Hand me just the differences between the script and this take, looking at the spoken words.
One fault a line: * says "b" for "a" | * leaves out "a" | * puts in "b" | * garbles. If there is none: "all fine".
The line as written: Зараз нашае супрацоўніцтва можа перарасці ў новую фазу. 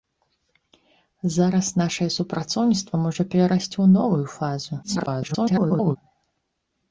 * garbles